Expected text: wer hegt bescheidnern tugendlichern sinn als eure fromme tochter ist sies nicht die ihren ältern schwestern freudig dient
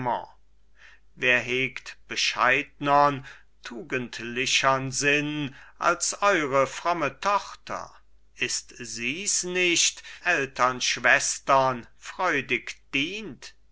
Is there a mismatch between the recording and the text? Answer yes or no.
yes